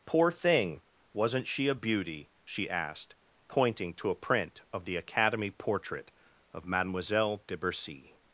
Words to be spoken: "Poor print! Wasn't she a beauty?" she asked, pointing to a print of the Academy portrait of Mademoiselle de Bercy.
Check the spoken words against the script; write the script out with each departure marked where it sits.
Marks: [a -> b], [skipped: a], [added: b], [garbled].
"Poor [print! -> thing] Wasn't she a beauty?" she asked, pointing to a print of the Academy portrait of Mademoiselle de Bercy.